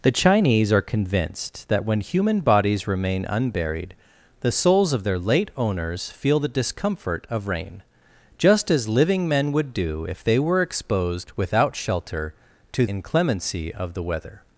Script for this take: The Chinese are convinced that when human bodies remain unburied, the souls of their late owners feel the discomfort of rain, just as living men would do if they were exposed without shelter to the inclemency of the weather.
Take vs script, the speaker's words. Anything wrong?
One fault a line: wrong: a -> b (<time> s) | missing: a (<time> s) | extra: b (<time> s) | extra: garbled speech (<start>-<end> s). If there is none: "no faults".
missing: the (12.9 s)